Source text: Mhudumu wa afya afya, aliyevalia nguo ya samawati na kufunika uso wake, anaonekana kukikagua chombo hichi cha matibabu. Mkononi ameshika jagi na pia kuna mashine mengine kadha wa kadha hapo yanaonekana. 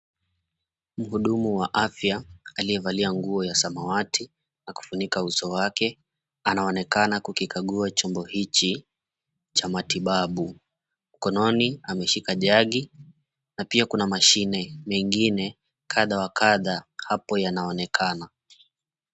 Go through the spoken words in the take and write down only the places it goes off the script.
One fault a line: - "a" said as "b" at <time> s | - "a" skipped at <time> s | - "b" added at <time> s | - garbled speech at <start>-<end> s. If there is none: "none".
- "afya" skipped at 2.2 s